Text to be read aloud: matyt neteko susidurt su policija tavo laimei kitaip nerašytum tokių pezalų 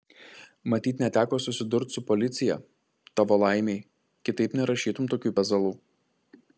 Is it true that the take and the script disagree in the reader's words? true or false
false